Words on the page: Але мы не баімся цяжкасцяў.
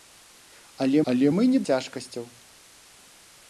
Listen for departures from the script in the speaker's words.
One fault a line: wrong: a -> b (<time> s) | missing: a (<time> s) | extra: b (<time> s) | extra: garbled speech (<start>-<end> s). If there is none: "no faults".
extra: але (1.1 s)
missing: баімся (1.6 s)